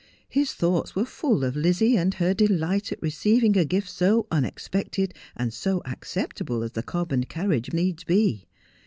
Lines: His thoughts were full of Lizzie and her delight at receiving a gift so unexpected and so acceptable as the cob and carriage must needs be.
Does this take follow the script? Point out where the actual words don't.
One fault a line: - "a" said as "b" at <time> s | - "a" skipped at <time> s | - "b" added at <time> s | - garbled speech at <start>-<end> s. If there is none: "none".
- "must" skipped at 7.7 s